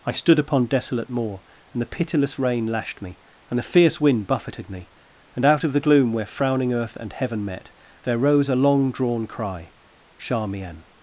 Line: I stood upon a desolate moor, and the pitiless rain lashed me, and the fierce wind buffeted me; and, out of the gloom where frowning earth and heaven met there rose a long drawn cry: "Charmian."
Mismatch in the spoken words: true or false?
true